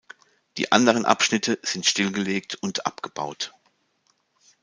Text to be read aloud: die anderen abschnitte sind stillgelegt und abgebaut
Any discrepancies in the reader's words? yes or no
no